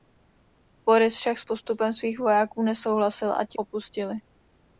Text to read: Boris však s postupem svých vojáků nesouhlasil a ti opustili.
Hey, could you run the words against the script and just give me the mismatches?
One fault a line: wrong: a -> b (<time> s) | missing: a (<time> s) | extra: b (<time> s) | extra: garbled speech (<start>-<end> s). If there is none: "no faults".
no faults